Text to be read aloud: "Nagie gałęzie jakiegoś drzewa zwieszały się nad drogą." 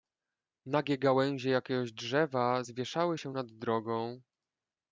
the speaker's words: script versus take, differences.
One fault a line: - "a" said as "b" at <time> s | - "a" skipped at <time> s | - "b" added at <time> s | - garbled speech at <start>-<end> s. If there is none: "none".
none